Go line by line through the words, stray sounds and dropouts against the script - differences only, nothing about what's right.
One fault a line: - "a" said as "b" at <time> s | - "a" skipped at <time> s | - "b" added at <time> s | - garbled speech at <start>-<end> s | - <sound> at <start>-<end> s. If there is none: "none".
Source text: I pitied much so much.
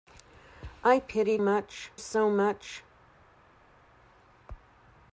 none